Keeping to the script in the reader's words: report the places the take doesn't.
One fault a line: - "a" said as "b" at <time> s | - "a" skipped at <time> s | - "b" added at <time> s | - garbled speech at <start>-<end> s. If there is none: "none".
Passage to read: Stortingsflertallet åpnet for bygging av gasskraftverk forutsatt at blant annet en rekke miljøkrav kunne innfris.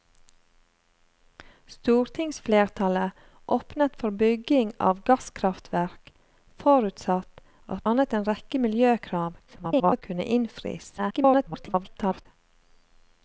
- "blant" skipped at 7.8 s
- garbled speech at 9.5-10.0 s
- garbled speech at 11.0-12.3 s